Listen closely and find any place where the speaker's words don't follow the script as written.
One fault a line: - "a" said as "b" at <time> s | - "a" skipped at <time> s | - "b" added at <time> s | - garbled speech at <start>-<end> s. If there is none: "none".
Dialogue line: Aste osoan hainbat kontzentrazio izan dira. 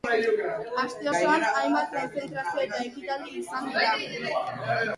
- "eta ekitaldi" added at 2.7 s